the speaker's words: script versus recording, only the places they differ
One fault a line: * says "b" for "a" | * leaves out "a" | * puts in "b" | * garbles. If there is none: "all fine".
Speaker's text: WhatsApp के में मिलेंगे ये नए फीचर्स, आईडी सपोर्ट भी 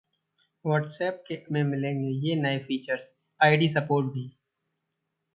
all fine